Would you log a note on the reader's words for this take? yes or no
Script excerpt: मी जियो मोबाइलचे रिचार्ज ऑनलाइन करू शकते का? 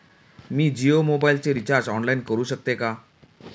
no